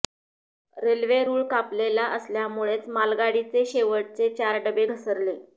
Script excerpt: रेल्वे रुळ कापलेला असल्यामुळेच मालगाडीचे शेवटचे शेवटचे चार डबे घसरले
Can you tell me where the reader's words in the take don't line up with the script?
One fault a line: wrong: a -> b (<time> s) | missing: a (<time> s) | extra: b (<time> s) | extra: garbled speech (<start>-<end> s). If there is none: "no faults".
missing: शेवटचे (4.3 s)